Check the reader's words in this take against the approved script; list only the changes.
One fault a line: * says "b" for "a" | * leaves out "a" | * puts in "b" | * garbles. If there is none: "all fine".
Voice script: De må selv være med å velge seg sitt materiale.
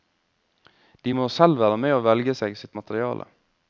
all fine